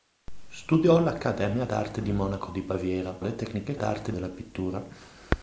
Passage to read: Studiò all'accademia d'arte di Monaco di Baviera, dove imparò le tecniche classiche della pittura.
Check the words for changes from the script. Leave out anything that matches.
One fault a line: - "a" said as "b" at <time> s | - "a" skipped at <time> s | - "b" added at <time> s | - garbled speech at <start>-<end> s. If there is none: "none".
- "dove imparò" skipped at 3.1 s
- "classiche" said as "d'arte" at 3.7 s